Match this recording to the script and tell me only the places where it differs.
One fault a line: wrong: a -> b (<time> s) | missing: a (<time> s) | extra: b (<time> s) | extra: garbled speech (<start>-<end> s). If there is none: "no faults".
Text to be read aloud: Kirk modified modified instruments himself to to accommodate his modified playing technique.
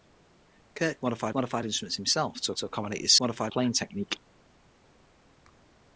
no faults